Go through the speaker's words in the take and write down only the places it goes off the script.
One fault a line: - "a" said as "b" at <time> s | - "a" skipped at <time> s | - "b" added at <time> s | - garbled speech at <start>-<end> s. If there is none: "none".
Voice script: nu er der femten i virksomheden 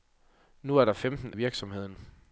none